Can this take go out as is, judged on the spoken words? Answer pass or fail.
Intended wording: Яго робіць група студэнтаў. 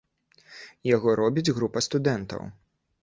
pass